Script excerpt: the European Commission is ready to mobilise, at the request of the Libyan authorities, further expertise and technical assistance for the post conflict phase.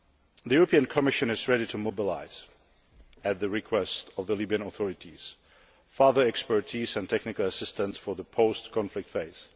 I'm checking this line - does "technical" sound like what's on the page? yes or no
yes